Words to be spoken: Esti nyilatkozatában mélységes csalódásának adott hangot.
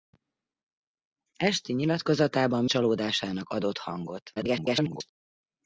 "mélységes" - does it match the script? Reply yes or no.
no